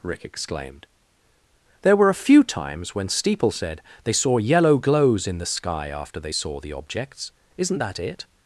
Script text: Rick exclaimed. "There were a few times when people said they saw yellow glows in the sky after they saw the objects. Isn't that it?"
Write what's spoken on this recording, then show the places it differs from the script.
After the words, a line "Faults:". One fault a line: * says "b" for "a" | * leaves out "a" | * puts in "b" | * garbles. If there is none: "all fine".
Rick exclaimed. "There were a few times when steeple said they saw yellow glows in the sky after they saw the objects. Isn't that it?"
Faults:
* says "steeple" for "people"